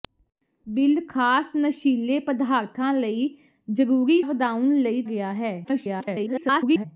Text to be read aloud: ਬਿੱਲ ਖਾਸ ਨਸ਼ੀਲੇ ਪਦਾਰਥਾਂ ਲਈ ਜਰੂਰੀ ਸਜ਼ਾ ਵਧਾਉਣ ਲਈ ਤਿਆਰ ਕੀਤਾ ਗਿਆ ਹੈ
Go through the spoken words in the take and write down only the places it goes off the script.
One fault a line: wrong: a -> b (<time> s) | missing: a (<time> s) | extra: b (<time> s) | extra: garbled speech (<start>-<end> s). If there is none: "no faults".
missing: ਸਜ਼ਾ (4.2 s)
missing: ਤਿਆਰ ਕੀਤਾ (5.0 s)
extra: garbled speech (5.6-6.9 s)